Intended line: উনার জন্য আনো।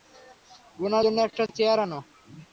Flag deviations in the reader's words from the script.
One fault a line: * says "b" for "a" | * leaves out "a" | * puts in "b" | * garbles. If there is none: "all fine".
* puts in "একটা চেয়ার"